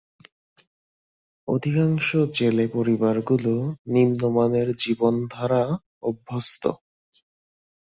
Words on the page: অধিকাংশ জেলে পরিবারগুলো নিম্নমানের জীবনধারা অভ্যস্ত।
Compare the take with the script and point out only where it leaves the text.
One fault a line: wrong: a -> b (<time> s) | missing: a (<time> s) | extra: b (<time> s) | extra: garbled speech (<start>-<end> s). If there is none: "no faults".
no faults